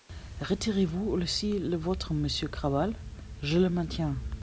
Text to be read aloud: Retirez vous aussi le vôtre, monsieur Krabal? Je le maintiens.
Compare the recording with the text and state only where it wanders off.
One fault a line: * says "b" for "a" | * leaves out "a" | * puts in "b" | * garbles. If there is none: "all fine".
all fine